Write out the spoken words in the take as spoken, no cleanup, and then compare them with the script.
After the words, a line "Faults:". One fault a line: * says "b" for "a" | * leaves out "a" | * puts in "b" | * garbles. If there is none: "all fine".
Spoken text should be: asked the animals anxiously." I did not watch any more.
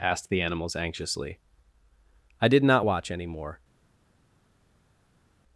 asked the animals anxiously." I did not watch any more.
Faults:
all fine